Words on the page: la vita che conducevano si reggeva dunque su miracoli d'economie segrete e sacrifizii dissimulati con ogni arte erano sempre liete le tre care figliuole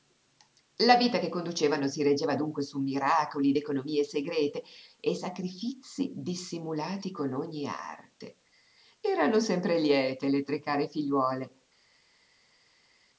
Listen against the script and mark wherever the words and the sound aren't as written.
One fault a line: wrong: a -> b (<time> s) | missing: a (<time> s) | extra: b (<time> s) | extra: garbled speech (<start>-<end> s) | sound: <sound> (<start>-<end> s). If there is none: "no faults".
no faults